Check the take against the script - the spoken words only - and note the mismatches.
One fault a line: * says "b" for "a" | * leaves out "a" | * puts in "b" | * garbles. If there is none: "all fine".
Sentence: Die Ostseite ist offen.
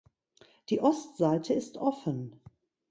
all fine